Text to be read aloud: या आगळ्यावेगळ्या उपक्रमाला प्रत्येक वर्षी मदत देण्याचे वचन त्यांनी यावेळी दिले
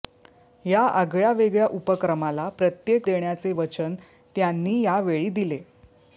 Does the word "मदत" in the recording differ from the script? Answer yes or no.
yes